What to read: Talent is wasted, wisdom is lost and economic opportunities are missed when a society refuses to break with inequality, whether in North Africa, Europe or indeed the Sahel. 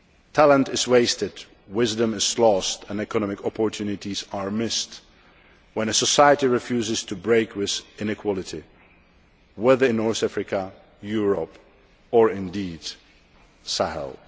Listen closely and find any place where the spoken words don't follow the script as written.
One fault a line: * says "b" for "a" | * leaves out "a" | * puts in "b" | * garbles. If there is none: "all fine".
all fine